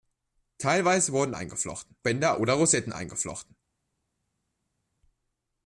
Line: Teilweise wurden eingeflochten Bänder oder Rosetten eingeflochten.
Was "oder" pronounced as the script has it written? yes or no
yes